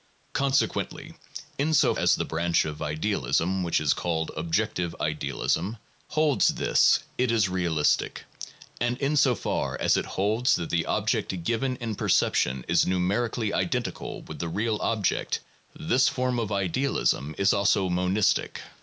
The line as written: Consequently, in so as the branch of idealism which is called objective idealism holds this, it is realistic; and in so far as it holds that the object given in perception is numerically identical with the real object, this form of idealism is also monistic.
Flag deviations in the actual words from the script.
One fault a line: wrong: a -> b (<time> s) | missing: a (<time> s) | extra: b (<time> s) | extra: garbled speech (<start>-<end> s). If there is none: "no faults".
no faults